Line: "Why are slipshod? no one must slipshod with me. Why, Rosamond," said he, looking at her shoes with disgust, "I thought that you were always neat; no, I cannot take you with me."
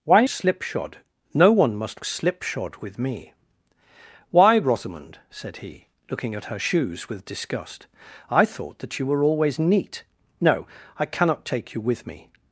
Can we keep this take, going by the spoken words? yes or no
yes